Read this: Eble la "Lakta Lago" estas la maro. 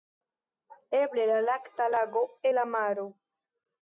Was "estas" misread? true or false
true